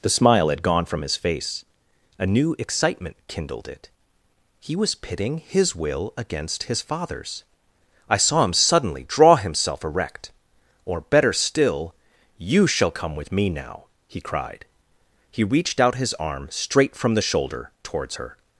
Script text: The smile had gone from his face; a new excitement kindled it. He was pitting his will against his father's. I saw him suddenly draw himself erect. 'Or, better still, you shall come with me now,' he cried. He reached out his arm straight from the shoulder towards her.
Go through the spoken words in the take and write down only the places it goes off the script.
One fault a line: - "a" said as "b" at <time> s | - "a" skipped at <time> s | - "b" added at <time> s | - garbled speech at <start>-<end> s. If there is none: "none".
none